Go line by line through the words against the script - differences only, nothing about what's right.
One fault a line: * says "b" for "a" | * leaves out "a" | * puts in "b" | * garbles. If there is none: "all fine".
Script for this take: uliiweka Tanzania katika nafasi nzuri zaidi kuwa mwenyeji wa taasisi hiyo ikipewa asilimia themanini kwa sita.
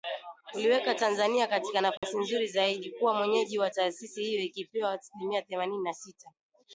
* says "na" for "kwa"